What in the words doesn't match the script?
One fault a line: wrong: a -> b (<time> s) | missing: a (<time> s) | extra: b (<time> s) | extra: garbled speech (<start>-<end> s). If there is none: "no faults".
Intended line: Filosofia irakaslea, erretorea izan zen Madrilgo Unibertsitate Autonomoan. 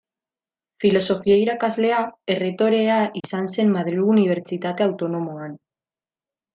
no faults